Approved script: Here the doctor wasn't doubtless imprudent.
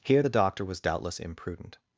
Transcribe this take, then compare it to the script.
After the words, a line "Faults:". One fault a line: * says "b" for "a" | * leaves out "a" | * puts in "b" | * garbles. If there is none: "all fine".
Here the doctor was doubtless imprudent.
Faults:
* says "was" for "wasn't"